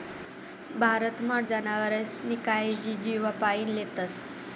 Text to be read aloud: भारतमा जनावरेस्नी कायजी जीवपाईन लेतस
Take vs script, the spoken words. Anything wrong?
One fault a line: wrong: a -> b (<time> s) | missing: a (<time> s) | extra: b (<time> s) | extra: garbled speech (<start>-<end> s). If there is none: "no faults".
no faults